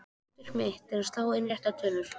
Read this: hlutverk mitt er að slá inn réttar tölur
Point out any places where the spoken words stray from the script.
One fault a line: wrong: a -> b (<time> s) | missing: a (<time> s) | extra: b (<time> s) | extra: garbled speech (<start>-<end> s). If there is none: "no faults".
no faults